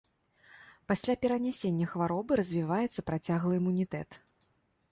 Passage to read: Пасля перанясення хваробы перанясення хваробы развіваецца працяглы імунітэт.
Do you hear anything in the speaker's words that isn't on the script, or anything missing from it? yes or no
yes